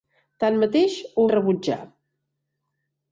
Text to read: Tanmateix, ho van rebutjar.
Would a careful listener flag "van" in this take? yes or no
yes